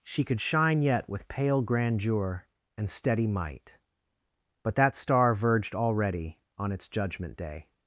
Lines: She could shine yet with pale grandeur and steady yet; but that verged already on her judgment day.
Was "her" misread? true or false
true